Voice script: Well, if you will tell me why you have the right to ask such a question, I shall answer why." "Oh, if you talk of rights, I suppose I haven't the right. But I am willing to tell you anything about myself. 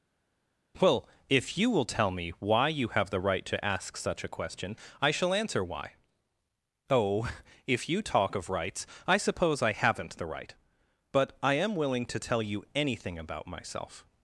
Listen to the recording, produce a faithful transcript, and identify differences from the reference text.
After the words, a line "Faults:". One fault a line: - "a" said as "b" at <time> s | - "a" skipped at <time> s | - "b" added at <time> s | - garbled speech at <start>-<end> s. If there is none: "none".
Well, if you will tell me why you have the right to ask such a question, I shall answer why." "Oh, if you talk of rights, I suppose I haven't the right. But I am willing to tell you anything about myself.
Faults:
none